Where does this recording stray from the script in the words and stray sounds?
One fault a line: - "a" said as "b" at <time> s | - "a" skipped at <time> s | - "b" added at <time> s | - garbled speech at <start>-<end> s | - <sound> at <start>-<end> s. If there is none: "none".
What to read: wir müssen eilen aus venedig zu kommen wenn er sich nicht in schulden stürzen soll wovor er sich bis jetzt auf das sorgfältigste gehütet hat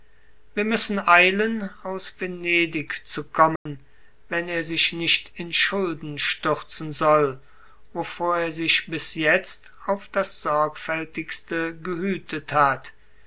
- dropout at 3.6-3.7 s